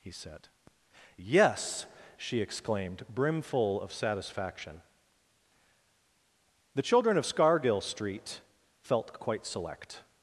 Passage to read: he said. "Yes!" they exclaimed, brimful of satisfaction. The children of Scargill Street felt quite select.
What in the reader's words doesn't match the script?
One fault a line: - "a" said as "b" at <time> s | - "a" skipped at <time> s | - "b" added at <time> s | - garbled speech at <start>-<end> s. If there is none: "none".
- "they" said as "she" at 2.2 s